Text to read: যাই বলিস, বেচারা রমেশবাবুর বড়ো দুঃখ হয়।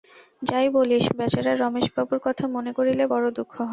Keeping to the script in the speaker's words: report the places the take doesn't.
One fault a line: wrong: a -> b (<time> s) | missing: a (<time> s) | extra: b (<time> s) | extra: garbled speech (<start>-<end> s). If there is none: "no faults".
extra: কথা মনে করিলে (2.2 s)